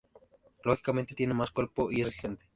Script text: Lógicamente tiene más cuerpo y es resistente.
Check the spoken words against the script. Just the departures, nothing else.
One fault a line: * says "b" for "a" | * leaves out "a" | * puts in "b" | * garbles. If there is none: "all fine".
all fine